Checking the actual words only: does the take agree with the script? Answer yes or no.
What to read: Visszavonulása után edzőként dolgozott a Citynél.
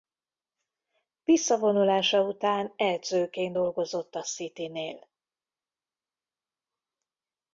yes